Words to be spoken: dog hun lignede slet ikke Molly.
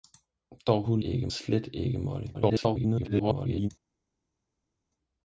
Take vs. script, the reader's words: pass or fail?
fail